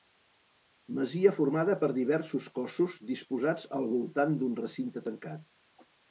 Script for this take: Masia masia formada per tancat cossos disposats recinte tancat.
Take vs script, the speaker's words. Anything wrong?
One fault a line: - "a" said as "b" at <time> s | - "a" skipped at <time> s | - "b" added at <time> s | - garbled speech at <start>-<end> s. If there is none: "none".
- "masia" skipped at 1.3 s
- "tancat" said as "diversos" at 2.0 s
- "al voltant d'un" added at 3.8 s